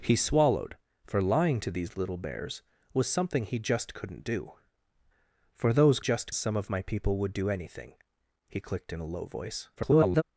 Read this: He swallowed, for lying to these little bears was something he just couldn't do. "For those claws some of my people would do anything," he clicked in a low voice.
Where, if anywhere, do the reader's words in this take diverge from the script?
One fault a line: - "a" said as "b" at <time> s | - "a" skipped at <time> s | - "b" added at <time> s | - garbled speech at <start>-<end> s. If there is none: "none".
- "claws" said as "just" at 6.0 s
- garbled speech at 9.8-10.2 s